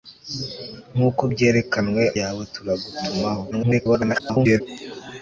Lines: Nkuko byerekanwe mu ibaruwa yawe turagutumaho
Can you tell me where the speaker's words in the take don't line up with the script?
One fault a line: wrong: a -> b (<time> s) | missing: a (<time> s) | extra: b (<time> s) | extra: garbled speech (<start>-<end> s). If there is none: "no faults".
missing: mu ibaruwa (2.0 s)
extra: garbled speech (3.5-4.6 s)